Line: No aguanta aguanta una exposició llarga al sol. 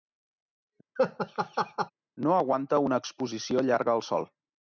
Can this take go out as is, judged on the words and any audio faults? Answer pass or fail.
fail